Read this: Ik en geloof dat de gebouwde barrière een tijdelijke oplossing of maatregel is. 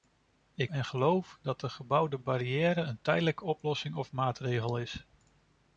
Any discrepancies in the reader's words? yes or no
no